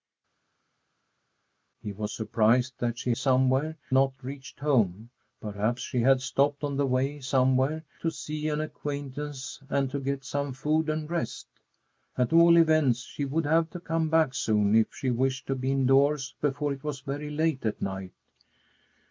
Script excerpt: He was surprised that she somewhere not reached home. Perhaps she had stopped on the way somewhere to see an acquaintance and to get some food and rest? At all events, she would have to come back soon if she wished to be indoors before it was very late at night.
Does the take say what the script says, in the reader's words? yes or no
yes